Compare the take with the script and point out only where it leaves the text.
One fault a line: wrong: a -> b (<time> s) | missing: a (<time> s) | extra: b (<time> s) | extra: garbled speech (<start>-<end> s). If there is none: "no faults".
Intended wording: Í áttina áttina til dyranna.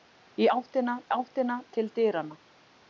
no faults